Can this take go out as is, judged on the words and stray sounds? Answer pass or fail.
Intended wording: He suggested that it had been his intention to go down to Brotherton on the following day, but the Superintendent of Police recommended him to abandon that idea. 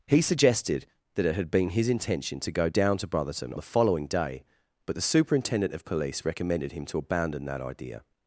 fail